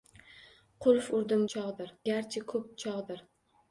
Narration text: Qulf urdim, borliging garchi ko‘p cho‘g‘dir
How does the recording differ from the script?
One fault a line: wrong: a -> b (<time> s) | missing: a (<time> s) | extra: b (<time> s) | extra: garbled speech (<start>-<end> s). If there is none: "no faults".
wrong: borliging -> cho‘g‘dir (1.6 s)